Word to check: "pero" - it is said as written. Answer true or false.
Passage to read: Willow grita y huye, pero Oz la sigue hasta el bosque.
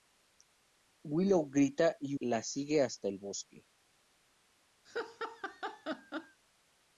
false